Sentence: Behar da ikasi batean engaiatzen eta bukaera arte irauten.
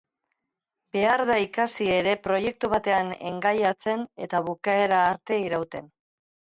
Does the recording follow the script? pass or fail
fail